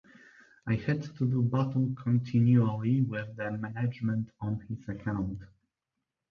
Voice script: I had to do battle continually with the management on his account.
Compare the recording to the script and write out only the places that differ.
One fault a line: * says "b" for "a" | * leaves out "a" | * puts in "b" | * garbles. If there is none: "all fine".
all fine